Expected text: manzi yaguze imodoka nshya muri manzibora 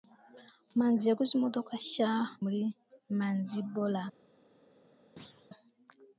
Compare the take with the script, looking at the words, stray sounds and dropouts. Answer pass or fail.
fail